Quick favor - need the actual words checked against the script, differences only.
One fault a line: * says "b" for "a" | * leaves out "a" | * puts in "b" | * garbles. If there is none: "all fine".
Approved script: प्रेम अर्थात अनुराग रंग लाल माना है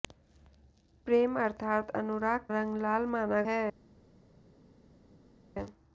all fine